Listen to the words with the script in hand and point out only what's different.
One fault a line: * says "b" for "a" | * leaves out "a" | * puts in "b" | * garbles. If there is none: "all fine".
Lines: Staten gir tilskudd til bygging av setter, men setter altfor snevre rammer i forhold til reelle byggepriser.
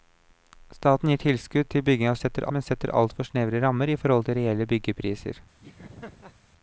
all fine